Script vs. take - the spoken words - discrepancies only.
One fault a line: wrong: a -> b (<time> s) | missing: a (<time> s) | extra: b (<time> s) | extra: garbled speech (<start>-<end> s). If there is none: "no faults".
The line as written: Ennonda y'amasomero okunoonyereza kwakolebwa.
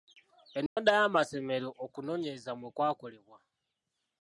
extra: mwe (2.6 s)